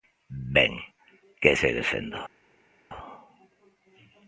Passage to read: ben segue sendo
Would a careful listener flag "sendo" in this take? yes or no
no